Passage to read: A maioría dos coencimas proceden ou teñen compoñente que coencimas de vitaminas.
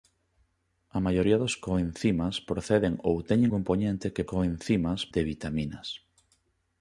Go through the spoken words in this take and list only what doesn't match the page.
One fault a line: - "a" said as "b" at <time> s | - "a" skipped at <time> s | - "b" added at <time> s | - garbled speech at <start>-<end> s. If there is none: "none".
none